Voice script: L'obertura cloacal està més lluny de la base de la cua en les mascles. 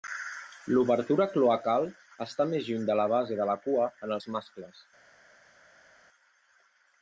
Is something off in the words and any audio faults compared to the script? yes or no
yes